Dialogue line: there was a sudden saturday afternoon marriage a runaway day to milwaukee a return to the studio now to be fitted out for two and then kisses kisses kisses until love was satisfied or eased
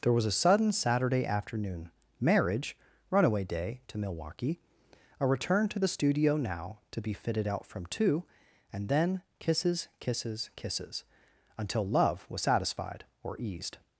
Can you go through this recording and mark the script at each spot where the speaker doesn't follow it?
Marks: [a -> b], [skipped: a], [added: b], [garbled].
there was a sudden saturday afternoon marriage [skipped: a] runaway day to milwaukee a return to the studio now to be fitted out [for -> from] two and then kisses kisses kisses until love was satisfied or eased